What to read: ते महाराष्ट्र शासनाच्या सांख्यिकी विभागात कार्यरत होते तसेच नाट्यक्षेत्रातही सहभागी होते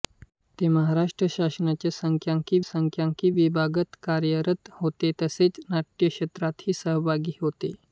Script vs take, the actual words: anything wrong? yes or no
yes